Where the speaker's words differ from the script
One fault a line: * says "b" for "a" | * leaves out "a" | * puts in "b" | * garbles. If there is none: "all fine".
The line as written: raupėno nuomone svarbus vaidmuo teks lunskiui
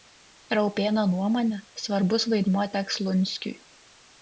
all fine